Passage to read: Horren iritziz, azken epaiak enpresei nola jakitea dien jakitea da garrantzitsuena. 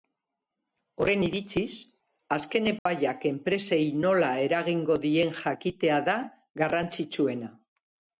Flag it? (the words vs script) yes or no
yes